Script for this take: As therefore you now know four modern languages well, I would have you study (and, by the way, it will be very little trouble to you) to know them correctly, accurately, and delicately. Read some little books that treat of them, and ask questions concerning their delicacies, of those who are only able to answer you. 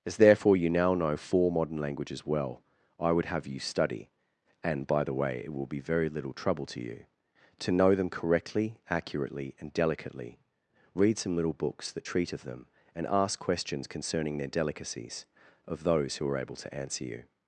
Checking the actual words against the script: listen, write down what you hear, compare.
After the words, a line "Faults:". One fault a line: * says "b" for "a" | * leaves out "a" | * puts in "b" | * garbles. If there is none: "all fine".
As therefore you now know four modern languages well, I would have you study (and, by the way, it will be very little trouble to you) to know them correctly, accurately, and delicately. Read some little books that treat of them, and ask questions concerning their delicacies, of those who are able to answer you.
Faults:
* leaves out "only"